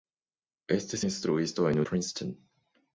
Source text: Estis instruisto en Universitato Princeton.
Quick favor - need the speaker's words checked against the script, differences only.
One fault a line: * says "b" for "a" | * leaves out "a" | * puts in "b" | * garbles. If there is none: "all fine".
* leaves out "Universitato"